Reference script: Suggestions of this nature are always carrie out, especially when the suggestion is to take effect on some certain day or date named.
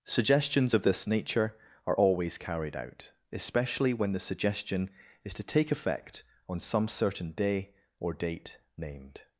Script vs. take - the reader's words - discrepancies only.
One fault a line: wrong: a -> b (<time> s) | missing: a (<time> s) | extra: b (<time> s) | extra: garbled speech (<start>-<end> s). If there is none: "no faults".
wrong: carrie -> carried (2.4 s)